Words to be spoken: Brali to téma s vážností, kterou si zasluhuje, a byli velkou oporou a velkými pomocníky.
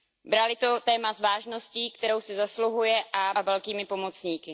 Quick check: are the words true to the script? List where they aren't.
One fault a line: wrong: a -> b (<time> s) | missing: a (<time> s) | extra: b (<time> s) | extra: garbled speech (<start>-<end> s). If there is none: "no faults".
missing: byli velkou oporou (3.3 s)